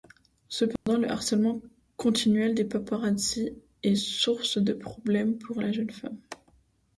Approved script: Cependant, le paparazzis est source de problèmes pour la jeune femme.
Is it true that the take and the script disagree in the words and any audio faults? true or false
true